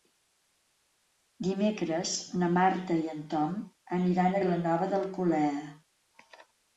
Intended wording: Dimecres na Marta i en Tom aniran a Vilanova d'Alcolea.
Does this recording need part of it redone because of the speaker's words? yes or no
no